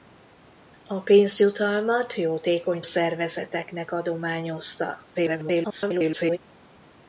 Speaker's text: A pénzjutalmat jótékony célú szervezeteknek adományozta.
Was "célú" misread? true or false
true